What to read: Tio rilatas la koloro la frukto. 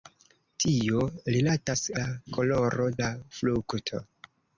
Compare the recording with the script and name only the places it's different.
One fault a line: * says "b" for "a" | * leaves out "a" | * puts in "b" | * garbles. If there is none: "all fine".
all fine